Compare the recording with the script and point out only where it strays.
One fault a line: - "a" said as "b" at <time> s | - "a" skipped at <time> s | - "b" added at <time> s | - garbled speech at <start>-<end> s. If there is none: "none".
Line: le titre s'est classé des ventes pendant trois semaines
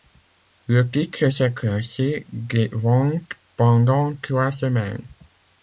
none